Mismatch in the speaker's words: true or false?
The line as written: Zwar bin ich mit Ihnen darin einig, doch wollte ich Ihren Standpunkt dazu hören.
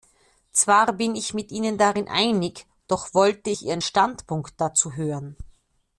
false